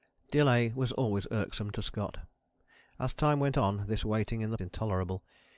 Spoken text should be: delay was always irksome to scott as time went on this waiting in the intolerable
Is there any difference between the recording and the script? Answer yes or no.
no